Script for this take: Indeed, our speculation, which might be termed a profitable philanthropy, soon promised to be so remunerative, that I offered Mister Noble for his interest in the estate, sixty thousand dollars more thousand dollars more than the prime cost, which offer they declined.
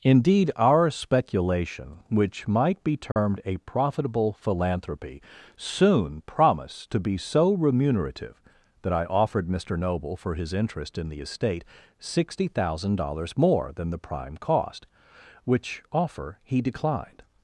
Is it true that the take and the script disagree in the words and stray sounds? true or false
true